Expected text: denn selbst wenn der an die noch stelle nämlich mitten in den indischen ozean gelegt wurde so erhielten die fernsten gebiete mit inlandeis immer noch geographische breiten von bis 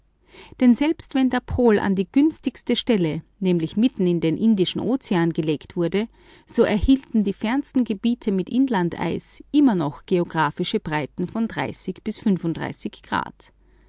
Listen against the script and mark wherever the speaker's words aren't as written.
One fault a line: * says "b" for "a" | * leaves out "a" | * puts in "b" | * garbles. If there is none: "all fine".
* puts in "pol"
* says "günstigste" for "noch"